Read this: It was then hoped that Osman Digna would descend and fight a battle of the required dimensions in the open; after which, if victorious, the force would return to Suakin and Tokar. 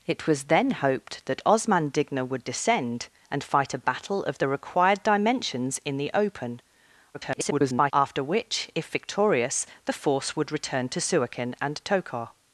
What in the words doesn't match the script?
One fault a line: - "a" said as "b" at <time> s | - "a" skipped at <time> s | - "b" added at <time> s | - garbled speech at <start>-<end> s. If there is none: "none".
- garbled speech at 7.1-7.9 s